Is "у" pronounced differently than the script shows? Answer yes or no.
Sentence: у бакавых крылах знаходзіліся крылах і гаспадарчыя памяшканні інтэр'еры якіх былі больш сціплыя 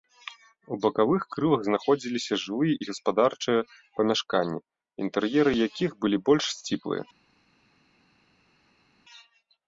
no